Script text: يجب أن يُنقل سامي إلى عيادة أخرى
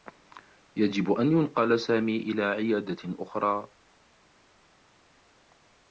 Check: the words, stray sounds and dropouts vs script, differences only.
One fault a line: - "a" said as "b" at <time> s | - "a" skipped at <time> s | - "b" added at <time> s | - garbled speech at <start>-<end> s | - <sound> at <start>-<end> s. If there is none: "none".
none